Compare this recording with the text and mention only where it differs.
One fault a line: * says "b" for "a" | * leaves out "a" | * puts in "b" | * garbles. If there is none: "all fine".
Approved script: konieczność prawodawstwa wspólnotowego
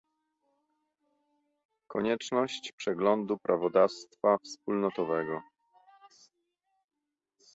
* puts in "przeglądu"